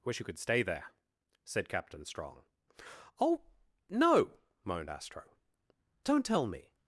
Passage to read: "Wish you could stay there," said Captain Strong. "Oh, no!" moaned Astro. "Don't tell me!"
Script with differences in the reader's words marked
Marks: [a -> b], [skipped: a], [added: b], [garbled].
"Wish you could stay there," said Captain Strong. "Oh, no!" moaned Astro. "Don't tell me!"